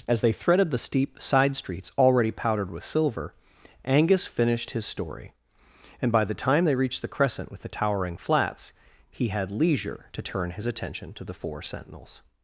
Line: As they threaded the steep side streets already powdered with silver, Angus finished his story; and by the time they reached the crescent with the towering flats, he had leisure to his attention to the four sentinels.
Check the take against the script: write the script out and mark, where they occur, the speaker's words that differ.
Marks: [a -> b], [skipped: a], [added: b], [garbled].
As they threaded the steep side streets already powdered with silver, Angus finished his story; and by the time they reached the crescent with the towering flats, he had leisure to [added: turn] his attention to the four sentinels.